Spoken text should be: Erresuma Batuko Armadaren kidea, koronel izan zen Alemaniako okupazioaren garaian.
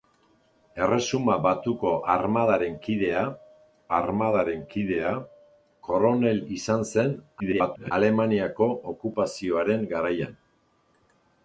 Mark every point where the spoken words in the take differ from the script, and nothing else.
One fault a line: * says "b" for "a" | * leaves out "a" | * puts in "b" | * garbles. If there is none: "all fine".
* puts in "Armadaren kidea"
* garbles